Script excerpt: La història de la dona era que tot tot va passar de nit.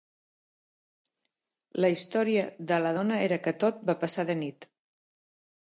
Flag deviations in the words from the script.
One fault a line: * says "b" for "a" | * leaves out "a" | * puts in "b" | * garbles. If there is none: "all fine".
* leaves out "tot"